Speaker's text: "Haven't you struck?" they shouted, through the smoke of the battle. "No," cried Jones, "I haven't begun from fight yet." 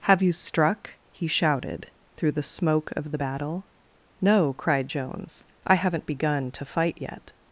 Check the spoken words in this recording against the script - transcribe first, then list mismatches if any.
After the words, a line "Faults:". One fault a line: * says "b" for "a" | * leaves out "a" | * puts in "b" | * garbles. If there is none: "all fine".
"Have you struck?" he shouted, through the smoke of the battle. "No," cried Jones, "I haven't begun to fight yet."
Faults:
* says "Have" for "Haven't"
* says "he" for "they"
* says "to" for "from"